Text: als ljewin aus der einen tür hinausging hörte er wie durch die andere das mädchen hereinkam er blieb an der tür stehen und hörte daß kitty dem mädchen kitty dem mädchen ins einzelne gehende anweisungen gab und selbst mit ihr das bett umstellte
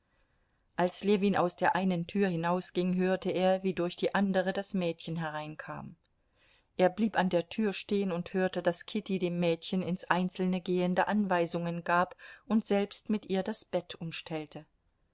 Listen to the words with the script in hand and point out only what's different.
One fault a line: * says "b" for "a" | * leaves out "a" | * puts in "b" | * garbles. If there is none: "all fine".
* leaves out "kitty dem mädchen"